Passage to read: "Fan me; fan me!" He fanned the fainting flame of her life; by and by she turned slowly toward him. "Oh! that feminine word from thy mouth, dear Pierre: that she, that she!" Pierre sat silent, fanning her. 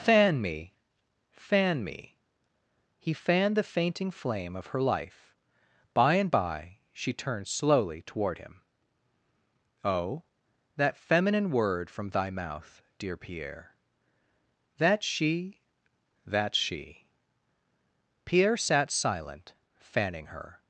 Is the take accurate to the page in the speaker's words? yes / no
yes